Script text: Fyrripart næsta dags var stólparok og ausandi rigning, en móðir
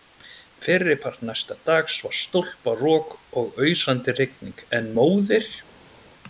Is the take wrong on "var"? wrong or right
right